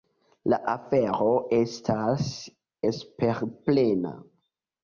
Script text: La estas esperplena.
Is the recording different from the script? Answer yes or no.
yes